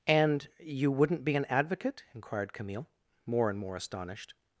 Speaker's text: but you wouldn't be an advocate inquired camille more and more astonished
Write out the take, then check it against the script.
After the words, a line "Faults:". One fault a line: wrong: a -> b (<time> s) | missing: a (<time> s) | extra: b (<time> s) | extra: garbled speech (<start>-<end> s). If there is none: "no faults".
and you wouldn't be an advocate inquired camille more and more astonished
Faults:
wrong: but -> and (0.1 s)